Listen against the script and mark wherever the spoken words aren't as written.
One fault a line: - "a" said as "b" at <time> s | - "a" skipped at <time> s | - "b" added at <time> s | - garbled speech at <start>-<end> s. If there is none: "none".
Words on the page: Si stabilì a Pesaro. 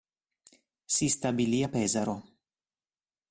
none